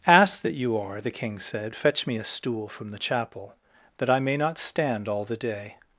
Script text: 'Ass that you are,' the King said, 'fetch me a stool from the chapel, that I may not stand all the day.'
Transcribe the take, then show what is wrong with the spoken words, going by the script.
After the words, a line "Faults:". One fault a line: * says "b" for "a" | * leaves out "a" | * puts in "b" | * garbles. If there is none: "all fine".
'Ass that you are,' the King said, 'fetch me a stool from the chapel, that I may not stand all the day.'
Faults:
all fine